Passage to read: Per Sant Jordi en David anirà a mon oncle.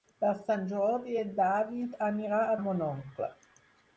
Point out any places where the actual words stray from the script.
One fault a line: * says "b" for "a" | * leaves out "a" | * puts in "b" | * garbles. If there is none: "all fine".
all fine